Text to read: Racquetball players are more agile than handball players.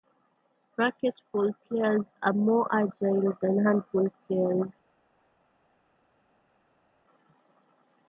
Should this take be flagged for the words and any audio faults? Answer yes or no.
no